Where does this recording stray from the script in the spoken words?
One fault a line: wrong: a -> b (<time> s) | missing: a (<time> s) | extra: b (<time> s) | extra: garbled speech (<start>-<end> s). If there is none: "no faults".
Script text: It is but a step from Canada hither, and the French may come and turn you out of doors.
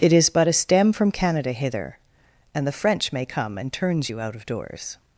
wrong: step -> stem (0.5 s)
wrong: turn -> turns (3.7 s)